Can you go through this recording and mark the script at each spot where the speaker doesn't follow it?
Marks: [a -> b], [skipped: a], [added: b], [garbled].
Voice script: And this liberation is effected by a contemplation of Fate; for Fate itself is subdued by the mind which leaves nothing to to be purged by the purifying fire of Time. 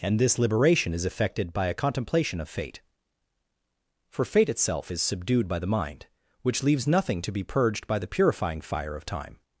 And this liberation is effected by a contemplation of Fate; for Fate itself is subdued by the mind which leaves nothing to [skipped: to] be purged by the purifying fire of Time.